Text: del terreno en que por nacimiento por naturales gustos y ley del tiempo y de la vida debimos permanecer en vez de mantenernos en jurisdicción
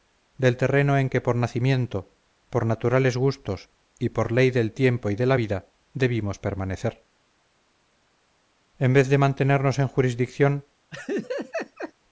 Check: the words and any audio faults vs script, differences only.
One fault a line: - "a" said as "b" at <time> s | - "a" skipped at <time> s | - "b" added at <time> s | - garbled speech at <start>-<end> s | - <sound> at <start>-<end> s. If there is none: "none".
- "por" added at 4.1 s
- laugh at 10.9-11.9 s